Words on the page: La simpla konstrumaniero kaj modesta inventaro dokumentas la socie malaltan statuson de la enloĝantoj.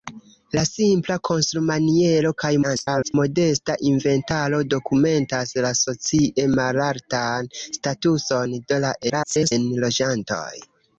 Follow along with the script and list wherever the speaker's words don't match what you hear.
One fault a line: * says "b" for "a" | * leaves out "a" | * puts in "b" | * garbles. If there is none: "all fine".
* garbles
* garbles